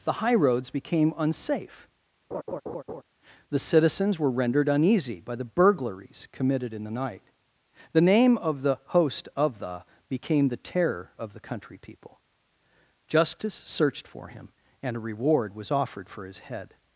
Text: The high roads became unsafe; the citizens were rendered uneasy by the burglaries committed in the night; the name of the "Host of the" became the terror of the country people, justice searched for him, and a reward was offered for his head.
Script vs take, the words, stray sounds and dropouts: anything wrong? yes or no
yes